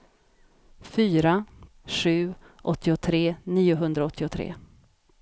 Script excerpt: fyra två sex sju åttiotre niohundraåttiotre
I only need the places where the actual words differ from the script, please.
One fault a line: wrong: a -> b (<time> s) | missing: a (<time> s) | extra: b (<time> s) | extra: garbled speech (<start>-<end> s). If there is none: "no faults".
missing: två sex (1.4 s)